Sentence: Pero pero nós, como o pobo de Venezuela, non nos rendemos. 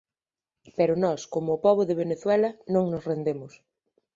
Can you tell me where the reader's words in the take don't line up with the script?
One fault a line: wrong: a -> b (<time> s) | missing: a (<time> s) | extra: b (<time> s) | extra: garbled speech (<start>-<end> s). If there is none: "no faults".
missing: pero (0.9 s)